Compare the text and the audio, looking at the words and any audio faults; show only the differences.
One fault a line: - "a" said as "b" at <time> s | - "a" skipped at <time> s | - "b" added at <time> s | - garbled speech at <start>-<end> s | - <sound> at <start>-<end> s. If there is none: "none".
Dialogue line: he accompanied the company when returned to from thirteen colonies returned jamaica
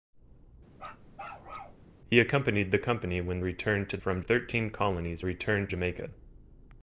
- bark at 0.8-1.8 s